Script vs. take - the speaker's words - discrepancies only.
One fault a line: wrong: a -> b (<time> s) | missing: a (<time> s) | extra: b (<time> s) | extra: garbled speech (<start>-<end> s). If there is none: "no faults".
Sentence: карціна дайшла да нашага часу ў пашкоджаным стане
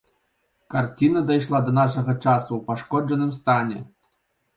no faults